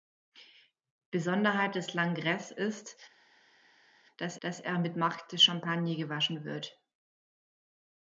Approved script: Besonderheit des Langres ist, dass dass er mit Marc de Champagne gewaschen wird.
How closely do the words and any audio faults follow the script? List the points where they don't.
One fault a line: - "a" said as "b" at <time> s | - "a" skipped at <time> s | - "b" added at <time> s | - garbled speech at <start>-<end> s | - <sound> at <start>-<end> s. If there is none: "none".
none